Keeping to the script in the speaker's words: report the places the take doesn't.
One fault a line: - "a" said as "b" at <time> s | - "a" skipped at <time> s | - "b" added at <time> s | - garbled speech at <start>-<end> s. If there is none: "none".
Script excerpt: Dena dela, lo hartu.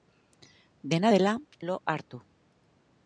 none